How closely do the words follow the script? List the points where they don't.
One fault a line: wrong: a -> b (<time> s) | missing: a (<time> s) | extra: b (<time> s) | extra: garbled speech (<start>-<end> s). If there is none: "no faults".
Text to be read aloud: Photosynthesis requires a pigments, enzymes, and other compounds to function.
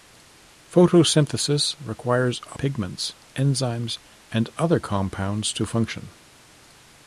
no faults